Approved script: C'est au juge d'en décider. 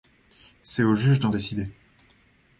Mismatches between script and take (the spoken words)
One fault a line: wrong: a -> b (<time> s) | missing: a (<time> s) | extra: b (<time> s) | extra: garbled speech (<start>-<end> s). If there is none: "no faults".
no faults